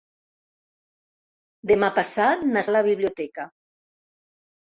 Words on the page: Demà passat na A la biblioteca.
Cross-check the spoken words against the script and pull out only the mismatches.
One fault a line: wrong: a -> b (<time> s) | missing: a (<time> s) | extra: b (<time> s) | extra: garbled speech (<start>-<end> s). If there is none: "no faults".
no faults